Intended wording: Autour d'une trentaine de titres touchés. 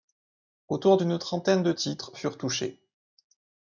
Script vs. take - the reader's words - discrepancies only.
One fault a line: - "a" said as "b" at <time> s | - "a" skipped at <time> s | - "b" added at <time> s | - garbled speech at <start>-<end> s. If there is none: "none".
- "furent" added at 2.1 s